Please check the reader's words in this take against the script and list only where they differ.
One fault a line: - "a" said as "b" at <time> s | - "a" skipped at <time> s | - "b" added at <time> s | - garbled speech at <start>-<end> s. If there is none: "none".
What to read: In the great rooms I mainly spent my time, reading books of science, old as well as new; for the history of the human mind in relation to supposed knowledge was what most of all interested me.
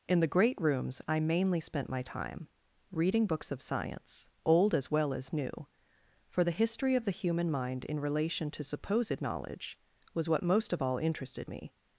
none